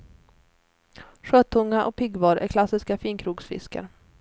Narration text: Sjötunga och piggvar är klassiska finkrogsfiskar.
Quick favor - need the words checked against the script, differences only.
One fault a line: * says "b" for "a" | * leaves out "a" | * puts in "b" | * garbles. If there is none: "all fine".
all fine